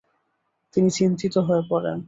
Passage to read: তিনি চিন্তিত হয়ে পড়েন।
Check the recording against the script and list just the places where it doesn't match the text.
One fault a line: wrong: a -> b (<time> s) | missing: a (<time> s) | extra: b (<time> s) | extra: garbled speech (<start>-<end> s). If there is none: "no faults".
no faults